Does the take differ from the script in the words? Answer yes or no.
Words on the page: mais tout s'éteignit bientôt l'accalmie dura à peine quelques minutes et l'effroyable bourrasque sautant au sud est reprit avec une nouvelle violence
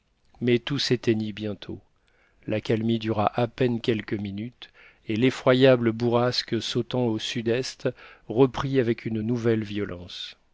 no